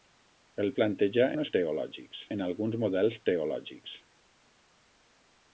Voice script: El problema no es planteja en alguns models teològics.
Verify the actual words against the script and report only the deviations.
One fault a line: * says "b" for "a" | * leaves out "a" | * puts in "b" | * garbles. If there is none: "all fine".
* says "planteja" for "problema"
* says "teològics" for "planteja"